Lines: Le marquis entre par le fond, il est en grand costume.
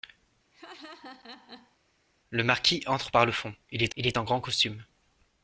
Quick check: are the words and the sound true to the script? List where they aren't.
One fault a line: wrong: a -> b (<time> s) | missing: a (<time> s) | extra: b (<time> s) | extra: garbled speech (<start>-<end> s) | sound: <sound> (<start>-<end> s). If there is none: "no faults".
sound: laugh (0.5-1.8 s)
extra: il est (4.0 s)